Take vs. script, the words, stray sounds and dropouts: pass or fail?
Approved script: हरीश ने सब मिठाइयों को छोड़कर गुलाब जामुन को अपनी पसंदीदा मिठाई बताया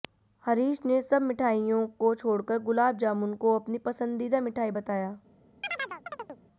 fail